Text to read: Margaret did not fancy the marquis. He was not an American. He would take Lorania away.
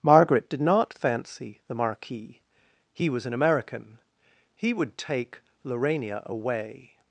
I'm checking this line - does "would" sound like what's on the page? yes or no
yes